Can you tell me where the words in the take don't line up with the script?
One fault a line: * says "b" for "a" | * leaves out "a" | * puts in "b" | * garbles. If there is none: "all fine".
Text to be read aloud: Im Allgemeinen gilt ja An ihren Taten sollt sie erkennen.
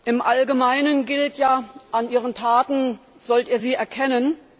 * puts in "ihr"